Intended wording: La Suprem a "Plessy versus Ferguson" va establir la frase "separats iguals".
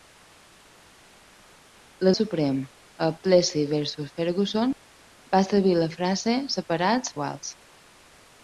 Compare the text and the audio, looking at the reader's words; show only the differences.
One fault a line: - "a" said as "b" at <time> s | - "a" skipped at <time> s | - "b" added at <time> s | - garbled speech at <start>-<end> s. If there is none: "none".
none